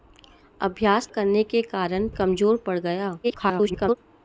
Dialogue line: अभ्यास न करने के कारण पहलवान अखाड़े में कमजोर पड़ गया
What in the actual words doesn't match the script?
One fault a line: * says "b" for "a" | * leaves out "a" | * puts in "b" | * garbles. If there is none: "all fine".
* leaves out "न"
* leaves out "पहलवान अखाड़े में"
* garbles